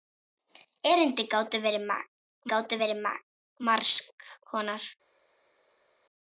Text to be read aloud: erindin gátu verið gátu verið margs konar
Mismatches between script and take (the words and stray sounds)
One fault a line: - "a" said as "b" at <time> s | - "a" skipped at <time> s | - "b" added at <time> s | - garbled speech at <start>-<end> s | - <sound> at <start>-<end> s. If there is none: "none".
none